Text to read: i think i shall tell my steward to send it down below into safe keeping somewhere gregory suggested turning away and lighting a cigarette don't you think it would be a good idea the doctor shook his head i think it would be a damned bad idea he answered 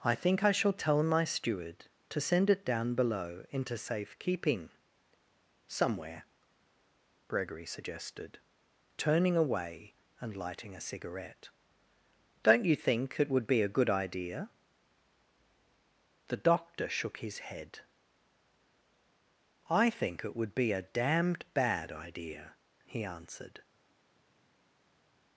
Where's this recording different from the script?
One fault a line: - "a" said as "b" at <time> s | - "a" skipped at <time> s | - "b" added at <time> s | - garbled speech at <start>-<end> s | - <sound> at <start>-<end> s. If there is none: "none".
none